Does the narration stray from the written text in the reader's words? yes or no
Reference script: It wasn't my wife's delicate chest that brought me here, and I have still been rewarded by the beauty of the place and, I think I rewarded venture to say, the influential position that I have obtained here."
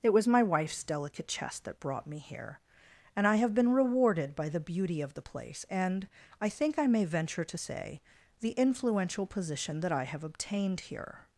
yes